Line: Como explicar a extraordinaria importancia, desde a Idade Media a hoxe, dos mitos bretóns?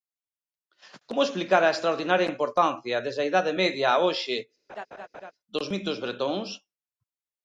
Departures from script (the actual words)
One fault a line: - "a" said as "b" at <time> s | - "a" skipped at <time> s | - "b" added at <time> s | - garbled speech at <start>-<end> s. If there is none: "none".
none